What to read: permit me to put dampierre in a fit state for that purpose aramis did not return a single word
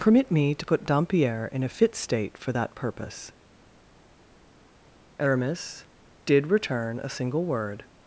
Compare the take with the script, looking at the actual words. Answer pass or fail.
fail